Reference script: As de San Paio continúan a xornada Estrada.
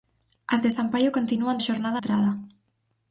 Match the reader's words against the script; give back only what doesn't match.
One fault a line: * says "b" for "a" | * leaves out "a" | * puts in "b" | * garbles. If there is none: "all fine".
all fine